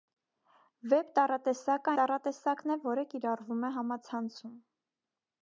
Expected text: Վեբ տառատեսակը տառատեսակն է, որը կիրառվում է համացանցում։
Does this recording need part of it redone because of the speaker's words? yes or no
no